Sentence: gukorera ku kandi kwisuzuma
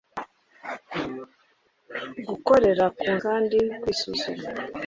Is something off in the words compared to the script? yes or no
no